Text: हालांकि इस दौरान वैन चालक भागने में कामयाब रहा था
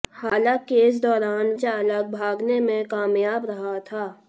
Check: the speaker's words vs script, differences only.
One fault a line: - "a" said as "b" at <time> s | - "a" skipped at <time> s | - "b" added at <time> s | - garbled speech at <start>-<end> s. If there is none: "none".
- "वैन" skipped at 1.5 s